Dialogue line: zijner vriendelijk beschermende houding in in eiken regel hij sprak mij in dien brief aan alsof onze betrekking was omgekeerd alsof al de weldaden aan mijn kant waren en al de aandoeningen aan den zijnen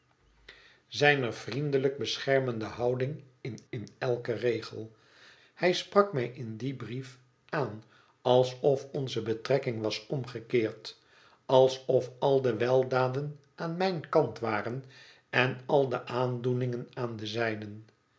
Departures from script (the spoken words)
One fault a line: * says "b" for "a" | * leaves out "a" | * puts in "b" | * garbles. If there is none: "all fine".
all fine